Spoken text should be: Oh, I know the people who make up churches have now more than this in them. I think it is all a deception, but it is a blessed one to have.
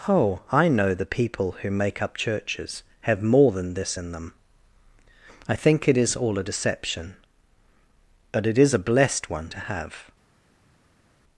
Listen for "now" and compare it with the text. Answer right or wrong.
wrong